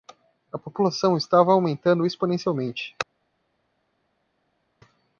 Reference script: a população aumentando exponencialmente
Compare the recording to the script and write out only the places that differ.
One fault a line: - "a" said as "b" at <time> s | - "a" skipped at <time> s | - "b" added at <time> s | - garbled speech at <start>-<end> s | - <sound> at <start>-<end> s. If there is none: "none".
- "estava" added at 1.1 s